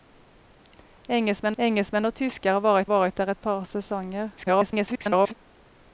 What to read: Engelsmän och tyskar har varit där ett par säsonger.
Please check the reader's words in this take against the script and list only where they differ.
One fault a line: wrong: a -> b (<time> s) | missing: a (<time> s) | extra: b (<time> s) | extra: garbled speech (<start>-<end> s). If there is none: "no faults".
extra: engelsmän (1.6 s)
extra: varit (2.9 s)
extra: garbled speech (4.4-5.3 s)